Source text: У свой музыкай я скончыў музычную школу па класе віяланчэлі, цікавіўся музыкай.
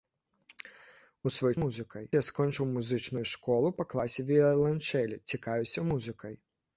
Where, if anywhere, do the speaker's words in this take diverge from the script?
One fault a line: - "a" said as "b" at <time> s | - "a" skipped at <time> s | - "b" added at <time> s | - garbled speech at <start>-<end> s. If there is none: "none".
none